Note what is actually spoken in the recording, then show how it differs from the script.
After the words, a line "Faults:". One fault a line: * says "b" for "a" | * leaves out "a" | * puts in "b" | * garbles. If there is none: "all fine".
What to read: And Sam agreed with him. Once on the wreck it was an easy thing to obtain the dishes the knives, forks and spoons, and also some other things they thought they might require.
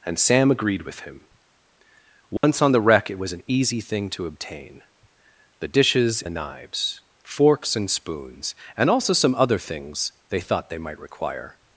And Sam agreed with him. Once on the wreck it was an easy thing to obtain the dishes the knives, forks and spoons, and also some other things they thought they might require.
Faults:
all fine